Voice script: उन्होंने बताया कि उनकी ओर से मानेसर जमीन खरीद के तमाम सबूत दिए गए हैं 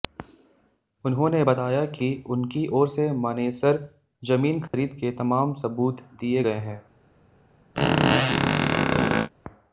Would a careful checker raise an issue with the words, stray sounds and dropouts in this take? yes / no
yes